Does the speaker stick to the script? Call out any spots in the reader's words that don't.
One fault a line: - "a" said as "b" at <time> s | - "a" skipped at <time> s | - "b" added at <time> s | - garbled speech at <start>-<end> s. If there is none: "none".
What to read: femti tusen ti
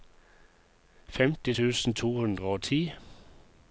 - "to hundre og" added at 1.9 s